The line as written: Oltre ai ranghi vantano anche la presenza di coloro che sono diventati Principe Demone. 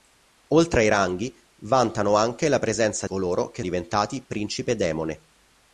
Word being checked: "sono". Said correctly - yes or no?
no